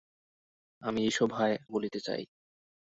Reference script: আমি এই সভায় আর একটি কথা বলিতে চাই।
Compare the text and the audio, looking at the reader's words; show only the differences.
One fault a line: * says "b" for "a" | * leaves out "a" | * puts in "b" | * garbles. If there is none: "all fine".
* leaves out "আর একটি কথা"